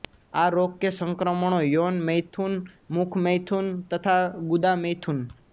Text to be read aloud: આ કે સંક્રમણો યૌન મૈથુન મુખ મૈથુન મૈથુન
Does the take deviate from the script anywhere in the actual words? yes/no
yes